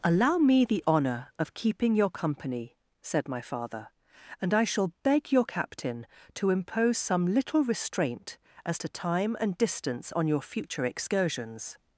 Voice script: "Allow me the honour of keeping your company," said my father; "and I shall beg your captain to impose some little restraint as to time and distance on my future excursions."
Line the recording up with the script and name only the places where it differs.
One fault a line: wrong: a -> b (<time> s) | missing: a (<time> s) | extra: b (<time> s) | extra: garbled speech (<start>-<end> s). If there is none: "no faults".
wrong: my -> your (10.3 s)